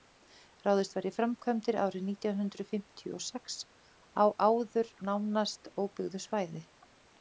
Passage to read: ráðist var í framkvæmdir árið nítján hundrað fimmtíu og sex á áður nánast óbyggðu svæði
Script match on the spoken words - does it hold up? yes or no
yes